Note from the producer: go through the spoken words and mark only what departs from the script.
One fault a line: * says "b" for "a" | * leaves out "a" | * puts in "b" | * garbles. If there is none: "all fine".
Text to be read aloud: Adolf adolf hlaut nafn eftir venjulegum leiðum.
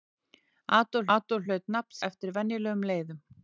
all fine